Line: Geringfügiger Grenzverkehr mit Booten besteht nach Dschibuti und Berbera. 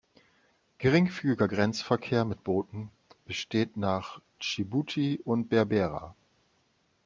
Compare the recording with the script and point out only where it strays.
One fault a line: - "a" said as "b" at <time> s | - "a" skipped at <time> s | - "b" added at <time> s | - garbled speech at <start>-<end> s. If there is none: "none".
none